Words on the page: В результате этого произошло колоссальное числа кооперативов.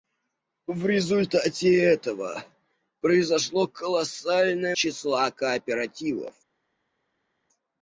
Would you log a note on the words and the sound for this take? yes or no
no